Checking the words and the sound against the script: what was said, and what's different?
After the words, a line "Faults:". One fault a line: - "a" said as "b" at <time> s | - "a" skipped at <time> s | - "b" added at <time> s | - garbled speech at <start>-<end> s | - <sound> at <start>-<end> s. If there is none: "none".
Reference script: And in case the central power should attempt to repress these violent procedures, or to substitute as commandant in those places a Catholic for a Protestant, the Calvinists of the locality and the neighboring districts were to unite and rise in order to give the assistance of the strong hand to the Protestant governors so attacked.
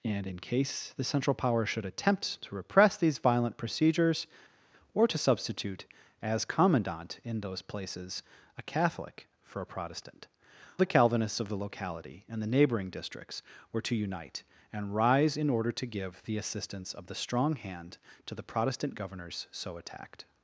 And in case the central power should attempt to repress these violent procedures, or to substitute as commandant in those places a Catholic for a Protestant, the Calvinists of the locality and the neighboring districts were to unite and rise in order to give the assistance of the strong hand to the Protestant governors so attacked.
Faults:
none